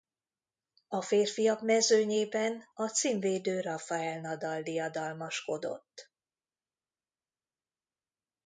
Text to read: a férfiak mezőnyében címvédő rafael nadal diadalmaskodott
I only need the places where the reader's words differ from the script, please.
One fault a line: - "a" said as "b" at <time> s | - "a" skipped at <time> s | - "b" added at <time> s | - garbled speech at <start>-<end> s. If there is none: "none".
- "a" added at 2.7 s